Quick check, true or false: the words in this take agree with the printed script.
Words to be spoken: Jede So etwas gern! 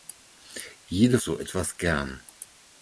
true